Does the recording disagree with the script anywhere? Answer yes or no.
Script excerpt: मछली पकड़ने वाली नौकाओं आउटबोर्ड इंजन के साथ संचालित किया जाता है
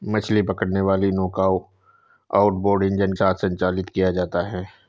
yes